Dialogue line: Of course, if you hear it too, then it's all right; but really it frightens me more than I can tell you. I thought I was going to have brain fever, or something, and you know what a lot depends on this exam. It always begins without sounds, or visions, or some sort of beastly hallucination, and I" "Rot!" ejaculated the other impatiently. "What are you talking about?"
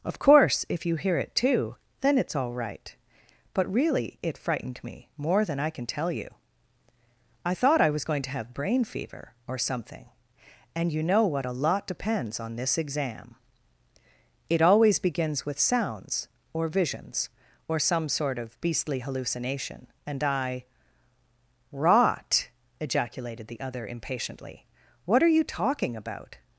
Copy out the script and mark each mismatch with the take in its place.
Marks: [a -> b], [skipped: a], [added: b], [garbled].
Of course, if you hear it too, then it's all right; but really it [frightens -> frightened] me more than I can tell you. I thought I was going to have brain fever, or something, and you know what a lot depends on this exam. It always begins [without -> with] sounds, or visions, or some sort of beastly hallucination, and I" "Rot!" ejaculated the other impatiently. "What are you talking about?"